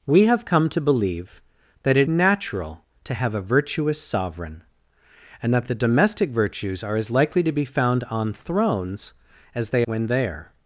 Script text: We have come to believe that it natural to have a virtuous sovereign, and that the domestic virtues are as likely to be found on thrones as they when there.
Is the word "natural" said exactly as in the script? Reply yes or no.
yes